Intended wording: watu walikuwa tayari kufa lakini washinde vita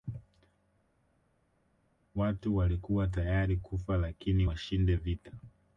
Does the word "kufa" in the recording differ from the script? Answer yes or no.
no